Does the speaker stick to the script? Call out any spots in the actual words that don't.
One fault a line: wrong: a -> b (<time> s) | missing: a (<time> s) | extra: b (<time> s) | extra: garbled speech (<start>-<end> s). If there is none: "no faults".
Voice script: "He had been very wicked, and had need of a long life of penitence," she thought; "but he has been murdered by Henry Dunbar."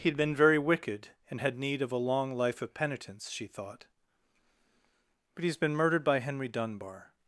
no faults